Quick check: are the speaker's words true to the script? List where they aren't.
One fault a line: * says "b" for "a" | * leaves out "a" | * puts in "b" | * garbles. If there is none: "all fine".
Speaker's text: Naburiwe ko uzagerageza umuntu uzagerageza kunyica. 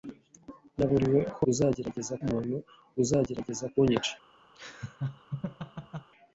all fine